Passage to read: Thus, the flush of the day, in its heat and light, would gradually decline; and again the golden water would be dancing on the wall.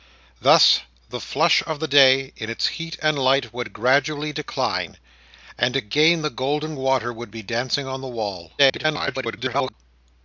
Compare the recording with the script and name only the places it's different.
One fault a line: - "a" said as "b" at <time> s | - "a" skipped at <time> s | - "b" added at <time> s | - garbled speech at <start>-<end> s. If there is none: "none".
- garbled speech at 8.6-9.7 s